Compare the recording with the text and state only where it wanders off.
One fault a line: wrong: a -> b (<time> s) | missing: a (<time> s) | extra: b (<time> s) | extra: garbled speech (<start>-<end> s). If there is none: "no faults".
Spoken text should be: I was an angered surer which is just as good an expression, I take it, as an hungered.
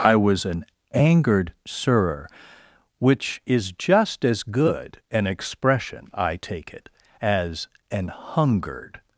no faults